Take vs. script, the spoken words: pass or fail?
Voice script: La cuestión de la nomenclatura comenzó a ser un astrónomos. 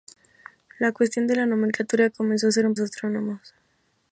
pass